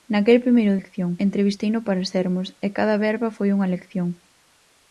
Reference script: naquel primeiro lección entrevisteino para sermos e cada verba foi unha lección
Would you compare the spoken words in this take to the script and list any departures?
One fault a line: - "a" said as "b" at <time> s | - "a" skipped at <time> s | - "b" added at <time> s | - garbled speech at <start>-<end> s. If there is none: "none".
none